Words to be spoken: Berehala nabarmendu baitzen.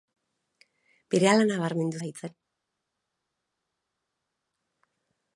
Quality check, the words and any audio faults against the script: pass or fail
pass